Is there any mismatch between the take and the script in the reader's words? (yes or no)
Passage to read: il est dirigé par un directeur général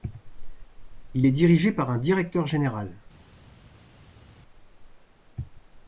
no